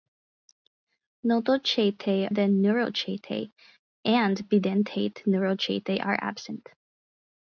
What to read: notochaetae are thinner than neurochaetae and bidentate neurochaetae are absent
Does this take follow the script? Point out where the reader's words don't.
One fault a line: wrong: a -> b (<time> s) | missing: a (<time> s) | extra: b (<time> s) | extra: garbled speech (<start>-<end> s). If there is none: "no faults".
missing: are thinner (2.3 s)